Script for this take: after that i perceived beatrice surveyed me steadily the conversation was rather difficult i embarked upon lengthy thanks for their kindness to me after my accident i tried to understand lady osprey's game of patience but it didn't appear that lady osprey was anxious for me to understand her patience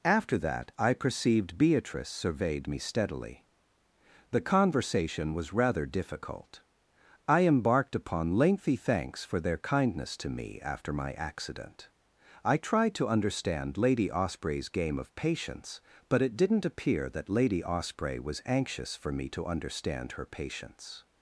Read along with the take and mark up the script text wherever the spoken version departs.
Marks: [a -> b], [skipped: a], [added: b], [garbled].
after that i perceived beatrice surveyed me steadily the conversation was rather difficult i embarked upon lengthy thanks for their kindness to me after my accident i tried to understand lady osprey's game of patience but it didn't appear that lady osprey was anxious for me to understand her patience